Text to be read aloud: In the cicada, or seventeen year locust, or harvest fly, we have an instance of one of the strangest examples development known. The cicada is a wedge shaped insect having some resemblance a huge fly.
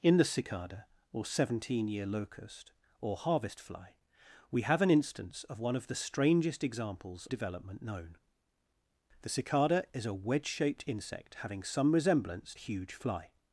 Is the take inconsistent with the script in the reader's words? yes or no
no